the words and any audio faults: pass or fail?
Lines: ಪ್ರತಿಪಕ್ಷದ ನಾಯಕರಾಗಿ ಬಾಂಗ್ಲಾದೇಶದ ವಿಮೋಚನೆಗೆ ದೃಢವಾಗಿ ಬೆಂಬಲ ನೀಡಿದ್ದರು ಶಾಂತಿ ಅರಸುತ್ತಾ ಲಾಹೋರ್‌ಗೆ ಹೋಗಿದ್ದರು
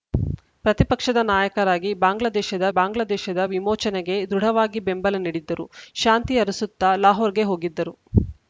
fail